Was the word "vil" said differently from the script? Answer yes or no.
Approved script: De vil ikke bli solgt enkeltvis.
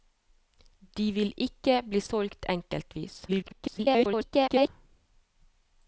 no